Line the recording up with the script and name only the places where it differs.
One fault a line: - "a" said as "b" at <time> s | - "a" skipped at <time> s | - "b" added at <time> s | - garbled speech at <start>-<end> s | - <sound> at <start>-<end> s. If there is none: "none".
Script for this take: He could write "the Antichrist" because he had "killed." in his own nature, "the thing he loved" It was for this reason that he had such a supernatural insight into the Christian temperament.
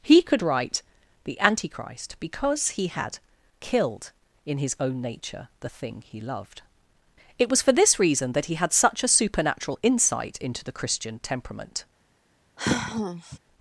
- sigh at 12.6-13.4 s